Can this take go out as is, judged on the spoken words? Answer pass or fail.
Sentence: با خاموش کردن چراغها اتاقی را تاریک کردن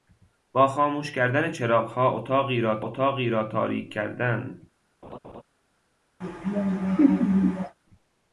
fail